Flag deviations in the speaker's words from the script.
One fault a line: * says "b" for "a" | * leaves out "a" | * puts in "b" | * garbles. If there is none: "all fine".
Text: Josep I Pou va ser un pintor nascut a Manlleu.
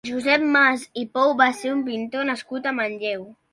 * puts in "Mas"